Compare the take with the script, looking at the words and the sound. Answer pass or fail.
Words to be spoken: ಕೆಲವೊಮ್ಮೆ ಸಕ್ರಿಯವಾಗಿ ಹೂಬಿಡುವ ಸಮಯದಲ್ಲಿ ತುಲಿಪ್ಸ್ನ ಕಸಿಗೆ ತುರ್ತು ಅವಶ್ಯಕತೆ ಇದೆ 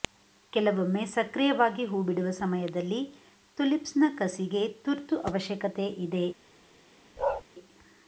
fail